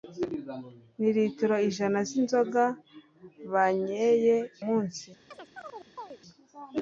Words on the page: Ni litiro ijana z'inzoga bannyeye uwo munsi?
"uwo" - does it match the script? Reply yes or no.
no